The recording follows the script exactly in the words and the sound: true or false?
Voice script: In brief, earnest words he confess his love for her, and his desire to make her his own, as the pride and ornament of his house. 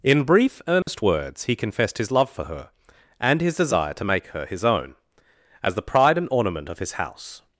false